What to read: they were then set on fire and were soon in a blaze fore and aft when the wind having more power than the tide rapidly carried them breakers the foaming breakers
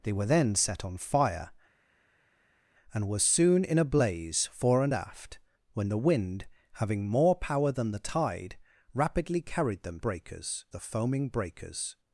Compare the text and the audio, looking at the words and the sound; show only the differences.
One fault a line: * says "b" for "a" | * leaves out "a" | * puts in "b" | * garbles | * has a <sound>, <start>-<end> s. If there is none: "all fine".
all fine